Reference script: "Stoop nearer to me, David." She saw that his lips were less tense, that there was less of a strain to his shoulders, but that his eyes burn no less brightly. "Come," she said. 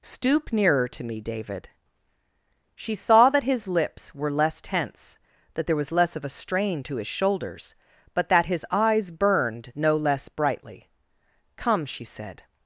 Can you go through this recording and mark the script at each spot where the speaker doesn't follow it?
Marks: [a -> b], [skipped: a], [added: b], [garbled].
"Stoop nearer to me, David." She saw that his lips were less tense, that there was less of a strain to his shoulders, but that his eyes [burn -> burned] no less brightly. "Come," she said.